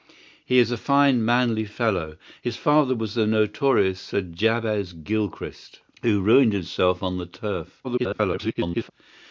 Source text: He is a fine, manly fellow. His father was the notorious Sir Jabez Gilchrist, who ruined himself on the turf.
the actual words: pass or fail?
fail